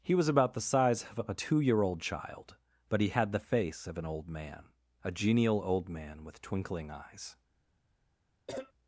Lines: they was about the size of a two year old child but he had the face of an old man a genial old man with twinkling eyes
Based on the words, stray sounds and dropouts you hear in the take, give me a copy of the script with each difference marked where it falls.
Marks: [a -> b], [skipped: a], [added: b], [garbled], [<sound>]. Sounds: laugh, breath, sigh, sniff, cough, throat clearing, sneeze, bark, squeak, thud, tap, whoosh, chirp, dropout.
[they -> he] was about the size of a two year old child but he had the face of an old man a genial old man with twinkling eyes [cough]